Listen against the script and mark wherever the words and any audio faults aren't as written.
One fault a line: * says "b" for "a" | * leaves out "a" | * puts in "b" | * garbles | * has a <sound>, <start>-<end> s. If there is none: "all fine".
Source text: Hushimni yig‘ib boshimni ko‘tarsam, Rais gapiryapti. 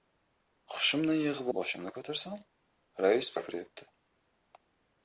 all fine